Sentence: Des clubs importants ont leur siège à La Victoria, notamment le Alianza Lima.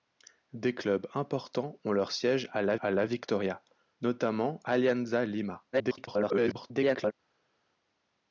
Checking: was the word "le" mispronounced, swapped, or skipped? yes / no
yes